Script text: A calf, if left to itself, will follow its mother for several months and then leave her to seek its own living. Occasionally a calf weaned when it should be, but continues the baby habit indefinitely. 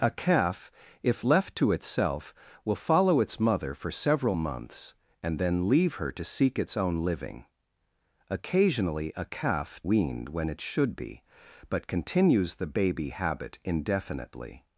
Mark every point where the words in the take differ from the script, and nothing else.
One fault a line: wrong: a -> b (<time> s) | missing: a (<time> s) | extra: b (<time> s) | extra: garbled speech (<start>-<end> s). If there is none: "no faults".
no faults